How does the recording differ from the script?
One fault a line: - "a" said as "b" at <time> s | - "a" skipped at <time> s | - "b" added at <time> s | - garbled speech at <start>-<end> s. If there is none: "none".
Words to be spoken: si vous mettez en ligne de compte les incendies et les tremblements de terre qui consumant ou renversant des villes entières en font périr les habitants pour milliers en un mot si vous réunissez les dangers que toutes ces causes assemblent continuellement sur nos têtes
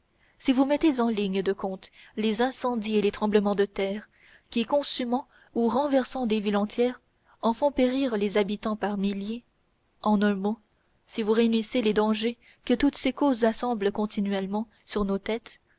- "pour" said as "par" at 8.8 s